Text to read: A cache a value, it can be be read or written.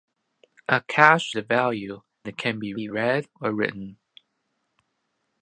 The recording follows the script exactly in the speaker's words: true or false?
true